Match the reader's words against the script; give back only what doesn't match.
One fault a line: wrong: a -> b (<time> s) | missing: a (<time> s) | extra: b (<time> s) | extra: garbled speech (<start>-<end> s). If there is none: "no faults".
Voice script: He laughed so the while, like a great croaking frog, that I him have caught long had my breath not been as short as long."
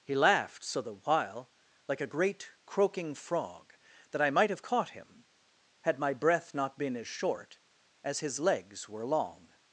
wrong: him -> might (4.3 s)
wrong: long -> him (4.9 s)
extra: his legs were (8.2 s)